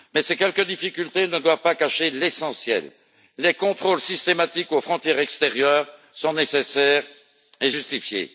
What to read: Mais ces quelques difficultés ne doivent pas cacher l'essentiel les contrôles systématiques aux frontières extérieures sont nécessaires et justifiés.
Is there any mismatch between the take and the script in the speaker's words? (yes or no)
no